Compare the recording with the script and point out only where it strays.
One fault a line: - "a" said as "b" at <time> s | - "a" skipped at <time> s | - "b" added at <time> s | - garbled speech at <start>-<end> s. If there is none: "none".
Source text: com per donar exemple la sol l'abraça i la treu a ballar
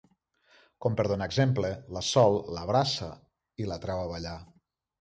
none